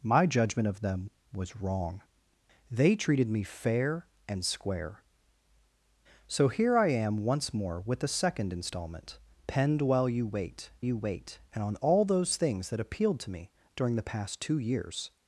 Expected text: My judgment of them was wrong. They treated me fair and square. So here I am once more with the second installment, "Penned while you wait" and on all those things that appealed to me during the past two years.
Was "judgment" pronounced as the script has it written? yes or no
yes